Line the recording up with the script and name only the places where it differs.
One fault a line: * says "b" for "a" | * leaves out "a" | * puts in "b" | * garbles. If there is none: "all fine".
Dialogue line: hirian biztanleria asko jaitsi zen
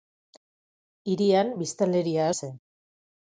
* leaves out "asko jaitsi"